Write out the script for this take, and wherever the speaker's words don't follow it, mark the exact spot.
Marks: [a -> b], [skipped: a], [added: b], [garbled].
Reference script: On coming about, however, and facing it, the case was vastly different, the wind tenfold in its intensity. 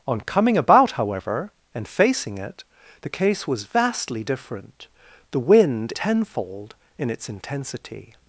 On coming about, however, and facing it, the case was vastly different, the wind tenfold in its intensity.